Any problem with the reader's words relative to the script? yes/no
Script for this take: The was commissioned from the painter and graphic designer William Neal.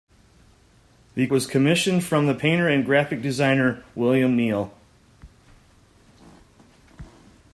no